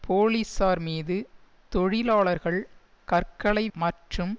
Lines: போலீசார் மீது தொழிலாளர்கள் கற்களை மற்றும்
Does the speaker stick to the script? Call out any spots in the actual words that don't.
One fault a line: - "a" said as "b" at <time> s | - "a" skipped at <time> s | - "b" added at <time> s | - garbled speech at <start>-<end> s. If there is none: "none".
none